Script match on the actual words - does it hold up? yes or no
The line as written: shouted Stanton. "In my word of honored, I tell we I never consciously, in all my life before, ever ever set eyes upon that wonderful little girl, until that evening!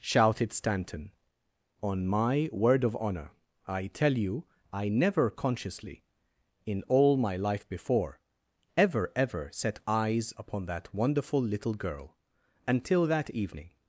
no